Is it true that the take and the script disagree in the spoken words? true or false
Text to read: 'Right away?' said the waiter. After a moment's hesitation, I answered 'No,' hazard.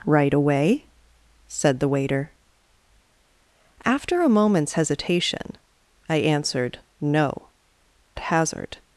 false